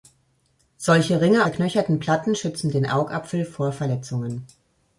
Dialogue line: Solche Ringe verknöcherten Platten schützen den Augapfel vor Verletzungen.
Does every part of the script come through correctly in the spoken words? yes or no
yes